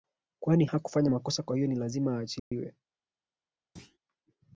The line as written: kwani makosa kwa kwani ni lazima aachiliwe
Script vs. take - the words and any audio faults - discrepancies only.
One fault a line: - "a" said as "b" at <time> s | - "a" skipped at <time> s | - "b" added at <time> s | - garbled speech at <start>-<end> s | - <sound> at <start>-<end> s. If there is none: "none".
- "hakufanya" added at 0.6 s
- "kwani" said as "hiyo" at 1.5 s
- dropout at 2.4-2.5 s
- thud at 3.8-4.0 s